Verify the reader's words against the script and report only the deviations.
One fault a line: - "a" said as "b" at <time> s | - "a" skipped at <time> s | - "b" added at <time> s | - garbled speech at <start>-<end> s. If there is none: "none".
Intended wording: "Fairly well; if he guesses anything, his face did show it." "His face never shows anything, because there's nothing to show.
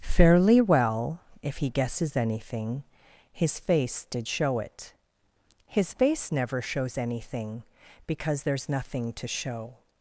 none